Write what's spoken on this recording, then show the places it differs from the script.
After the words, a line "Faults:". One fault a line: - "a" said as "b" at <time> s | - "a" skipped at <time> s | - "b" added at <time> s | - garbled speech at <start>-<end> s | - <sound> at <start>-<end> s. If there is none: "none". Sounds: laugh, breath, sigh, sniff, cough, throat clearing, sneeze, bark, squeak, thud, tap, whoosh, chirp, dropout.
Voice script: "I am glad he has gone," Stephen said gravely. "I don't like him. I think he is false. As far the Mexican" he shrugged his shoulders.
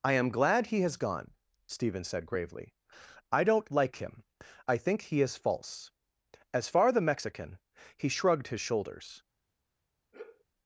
"I am glad he has gone," Stephen said gravely. "I don't like him. I think he is false. As far the Mexican" he shrugged his shoulders.
Faults:
- sigh at 10.1-10.5 s